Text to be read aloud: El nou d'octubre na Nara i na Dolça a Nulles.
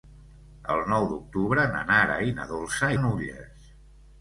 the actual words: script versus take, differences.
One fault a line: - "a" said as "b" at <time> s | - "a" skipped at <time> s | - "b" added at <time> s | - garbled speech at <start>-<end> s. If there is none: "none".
none